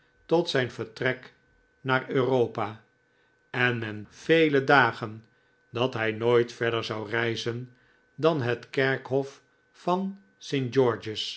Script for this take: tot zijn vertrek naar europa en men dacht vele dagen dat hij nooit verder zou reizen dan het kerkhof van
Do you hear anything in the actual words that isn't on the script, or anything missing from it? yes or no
yes